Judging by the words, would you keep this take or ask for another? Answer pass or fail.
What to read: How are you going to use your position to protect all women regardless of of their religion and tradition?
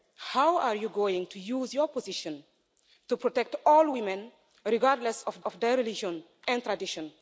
pass